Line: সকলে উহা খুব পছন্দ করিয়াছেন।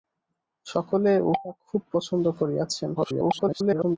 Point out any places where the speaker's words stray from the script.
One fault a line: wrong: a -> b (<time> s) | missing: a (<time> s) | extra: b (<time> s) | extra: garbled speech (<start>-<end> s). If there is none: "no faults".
extra: garbled speech (2.9-4.0 s)